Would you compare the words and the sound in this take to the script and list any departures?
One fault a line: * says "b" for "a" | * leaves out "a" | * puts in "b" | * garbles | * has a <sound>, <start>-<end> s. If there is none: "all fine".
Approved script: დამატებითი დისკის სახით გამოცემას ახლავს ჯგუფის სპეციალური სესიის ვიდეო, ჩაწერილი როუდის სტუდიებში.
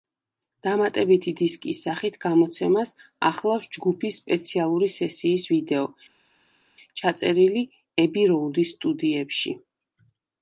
* puts in "ები"